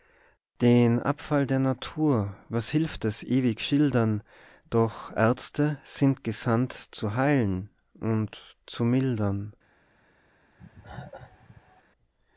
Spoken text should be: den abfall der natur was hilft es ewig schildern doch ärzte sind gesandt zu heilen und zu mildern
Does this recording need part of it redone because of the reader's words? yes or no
no